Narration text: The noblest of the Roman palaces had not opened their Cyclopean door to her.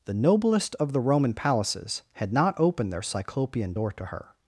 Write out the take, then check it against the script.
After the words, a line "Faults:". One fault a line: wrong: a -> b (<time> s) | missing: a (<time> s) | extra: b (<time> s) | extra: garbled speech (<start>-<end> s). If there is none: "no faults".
The noblest of the Roman palaces had not opened their Cyclopean door to her.
Faults:
no faults